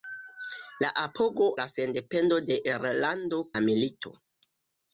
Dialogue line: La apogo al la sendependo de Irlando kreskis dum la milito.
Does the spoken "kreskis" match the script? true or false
false